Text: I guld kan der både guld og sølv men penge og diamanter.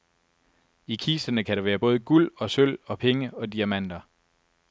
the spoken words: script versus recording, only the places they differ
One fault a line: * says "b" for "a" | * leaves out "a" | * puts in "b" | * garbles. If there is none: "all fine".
* says "kisterne" for "guld"
* puts in "være"
* says "og" for "men"